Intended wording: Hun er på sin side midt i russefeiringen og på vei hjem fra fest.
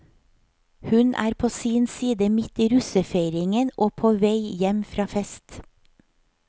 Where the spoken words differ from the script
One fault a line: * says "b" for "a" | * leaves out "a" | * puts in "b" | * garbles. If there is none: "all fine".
all fine